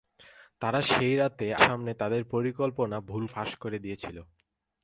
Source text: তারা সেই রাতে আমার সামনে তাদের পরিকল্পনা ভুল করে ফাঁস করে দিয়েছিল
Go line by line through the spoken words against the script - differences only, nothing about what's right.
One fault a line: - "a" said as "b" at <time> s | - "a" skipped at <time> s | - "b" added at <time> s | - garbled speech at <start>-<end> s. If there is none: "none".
- "আমার" skipped at 1.5 s
- "করে" skipped at 3.2 s